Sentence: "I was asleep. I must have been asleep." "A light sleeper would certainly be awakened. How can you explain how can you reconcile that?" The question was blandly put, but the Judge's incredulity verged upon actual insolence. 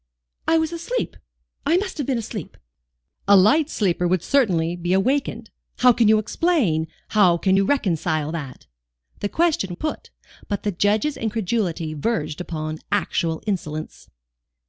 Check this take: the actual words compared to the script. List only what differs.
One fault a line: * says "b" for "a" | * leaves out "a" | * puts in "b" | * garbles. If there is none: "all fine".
* leaves out "was blandly"